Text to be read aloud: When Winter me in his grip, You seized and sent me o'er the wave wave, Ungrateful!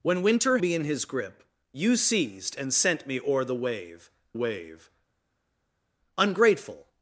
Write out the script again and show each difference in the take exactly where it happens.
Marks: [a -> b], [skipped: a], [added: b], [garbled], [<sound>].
When Winter me in his grip, You seized and sent me o'er the wave wave, Ungrateful!